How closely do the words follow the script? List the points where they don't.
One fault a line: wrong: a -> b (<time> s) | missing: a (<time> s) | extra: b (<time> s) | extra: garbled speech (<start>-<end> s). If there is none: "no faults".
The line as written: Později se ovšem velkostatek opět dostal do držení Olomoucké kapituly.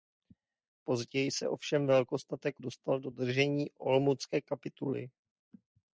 missing: opět (2.6 s)